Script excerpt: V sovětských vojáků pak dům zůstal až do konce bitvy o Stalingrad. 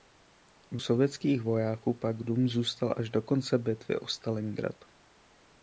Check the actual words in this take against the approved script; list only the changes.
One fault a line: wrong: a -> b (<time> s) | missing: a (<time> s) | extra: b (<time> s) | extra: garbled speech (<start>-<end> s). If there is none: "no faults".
no faults